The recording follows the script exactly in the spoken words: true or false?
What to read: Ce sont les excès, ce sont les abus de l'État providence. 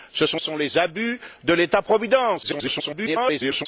false